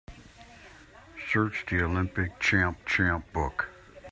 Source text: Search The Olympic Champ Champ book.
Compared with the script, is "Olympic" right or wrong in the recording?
right